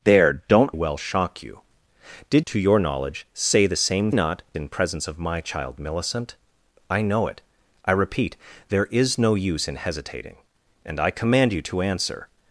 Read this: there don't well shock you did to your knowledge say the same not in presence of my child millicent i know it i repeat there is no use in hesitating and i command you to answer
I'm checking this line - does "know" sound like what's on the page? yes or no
yes